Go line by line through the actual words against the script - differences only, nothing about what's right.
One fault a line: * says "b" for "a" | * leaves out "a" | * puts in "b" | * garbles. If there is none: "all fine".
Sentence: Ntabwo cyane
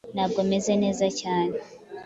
* puts in "meze neza"